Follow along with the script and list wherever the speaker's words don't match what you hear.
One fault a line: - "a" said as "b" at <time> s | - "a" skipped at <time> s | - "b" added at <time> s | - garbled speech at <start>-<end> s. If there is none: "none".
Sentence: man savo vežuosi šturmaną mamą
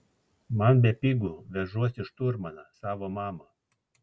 - "savo" said as "bepigu" at 0.8 s
- "savo" added at 2.8 s